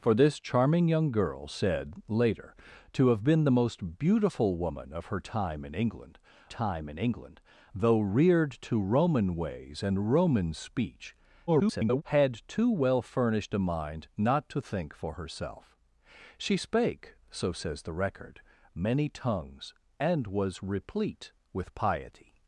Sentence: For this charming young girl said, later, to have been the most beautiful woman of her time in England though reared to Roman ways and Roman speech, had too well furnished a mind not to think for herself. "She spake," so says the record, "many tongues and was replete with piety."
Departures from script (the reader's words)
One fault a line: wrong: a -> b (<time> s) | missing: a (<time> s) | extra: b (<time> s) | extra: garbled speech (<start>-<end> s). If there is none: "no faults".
extra: time in England (6.5 s)
extra: garbled speech (11.5-12.0 s)